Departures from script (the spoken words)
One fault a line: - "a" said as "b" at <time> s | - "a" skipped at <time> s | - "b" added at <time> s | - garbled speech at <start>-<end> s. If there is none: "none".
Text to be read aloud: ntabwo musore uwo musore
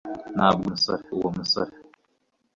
none